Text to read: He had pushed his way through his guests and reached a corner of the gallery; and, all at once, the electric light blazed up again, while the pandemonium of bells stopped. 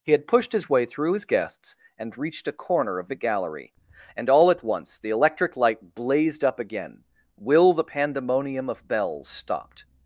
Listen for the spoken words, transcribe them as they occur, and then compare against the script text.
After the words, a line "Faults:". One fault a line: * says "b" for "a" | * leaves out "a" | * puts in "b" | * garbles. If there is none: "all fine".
He had pushed his way through his guests and reached a corner of the gallery; and, all at once, the electric light blazed up again, will the pandemonium of bells stopped.
Faults:
* says "will" for "while"